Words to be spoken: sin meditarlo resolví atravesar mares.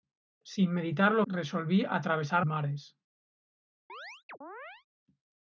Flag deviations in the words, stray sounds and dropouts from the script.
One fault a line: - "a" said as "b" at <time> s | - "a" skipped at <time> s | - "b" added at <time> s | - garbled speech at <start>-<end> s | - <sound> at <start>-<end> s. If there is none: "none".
- chirp at 3.9-4.9 s